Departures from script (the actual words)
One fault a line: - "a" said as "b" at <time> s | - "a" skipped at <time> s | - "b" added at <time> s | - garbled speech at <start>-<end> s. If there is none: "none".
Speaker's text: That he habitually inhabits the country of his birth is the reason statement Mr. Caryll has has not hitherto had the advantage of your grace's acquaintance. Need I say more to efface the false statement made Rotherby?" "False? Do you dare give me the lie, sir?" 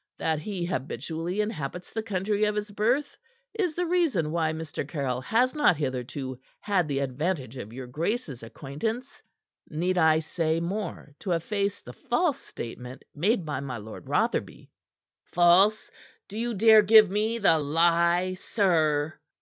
- "statement" said as "why" at 4.3 s
- "has" skipped at 5.5 s
- "by my Lord" added at 13.4 s